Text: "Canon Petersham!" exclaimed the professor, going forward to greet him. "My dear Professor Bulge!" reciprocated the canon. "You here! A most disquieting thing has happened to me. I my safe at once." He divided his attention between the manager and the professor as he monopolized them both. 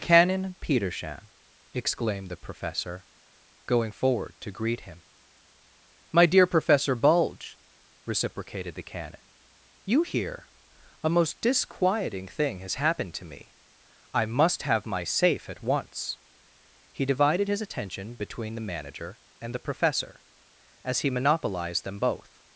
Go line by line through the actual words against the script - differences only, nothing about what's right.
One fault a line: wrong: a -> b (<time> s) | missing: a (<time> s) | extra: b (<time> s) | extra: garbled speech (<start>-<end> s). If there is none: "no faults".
extra: must have (14.3 s)